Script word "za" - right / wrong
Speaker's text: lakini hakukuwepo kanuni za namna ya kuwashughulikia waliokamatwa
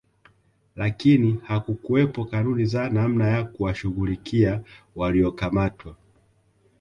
right